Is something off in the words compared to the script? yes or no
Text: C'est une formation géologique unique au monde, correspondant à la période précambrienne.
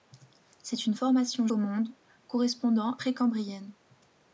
yes